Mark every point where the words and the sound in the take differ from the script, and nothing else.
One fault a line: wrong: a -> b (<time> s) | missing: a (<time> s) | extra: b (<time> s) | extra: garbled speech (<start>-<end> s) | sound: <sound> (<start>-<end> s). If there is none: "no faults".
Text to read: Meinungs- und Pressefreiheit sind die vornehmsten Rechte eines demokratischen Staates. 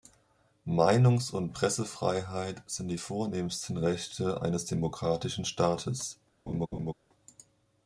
sound: laugh (6.5-6.9 s)